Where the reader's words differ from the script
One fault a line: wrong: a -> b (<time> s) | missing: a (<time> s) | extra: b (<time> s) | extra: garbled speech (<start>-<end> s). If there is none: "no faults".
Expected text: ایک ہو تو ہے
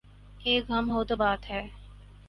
extra: غم (0.7 s)
extra: بات (1.1 s)